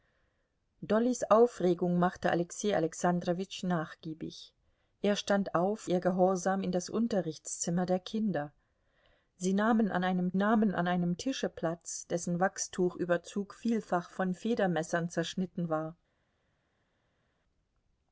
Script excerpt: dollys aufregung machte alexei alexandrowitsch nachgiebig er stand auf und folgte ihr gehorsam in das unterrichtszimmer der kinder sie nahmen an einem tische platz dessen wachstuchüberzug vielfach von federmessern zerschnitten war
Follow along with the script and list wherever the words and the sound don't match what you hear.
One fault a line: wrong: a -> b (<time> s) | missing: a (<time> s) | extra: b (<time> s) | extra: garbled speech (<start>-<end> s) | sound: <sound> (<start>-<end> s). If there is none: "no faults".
missing: und folgte (5.9 s)
extra: nahmen an einem (10.4 s)